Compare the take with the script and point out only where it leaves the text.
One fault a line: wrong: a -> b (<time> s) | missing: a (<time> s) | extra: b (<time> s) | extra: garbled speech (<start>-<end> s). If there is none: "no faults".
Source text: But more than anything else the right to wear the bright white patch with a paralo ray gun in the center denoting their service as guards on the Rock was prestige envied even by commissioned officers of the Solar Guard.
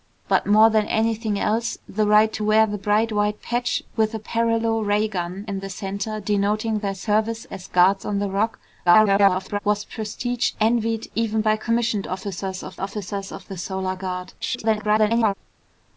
extra: garbled speech (8.9-9.6 s)
extra: officers of (12.8 s)
extra: garbled speech (14.4-15.3 s)